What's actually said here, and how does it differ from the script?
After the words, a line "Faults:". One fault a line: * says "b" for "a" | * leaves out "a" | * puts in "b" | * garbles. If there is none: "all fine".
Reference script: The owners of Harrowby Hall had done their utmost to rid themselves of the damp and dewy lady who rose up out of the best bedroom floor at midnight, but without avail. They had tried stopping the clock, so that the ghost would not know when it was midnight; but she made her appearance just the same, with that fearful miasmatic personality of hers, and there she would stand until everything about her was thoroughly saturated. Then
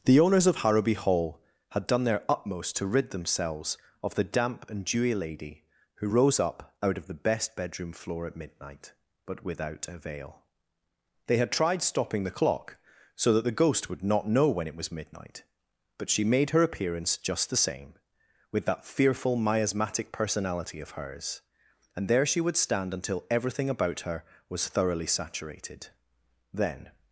The owners of Harrowby Hall had done their utmost to rid themselves of the damp and dewy lady who rose up out of the best bedroom floor at midnight, but without avail. They had tried stopping the clock, so that the ghost would not know when it was midnight; but she made her appearance just the same, with that fearful miasmatic personality of hers, and there she would stand until everything about her was thoroughly saturated. Then
Faults:
all fine